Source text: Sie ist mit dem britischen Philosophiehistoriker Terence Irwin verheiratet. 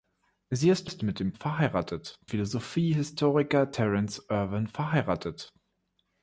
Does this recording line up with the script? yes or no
no